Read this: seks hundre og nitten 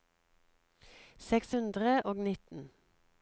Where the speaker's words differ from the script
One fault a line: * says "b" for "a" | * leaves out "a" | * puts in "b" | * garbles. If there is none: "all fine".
all fine